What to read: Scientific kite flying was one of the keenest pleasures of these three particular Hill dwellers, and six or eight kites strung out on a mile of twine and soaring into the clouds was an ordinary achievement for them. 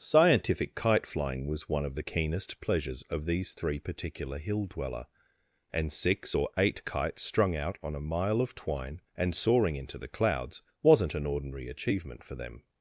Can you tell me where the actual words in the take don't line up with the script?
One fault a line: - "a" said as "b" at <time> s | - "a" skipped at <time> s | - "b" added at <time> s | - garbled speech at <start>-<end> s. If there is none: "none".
- "dwellers" said as "dweller" at 4.6 s
- "was" said as "wasn't" at 10.8 s